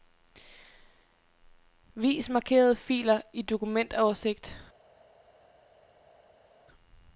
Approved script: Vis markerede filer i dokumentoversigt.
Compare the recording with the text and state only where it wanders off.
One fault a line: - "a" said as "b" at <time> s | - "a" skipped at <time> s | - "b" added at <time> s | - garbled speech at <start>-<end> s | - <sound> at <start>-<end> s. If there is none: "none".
none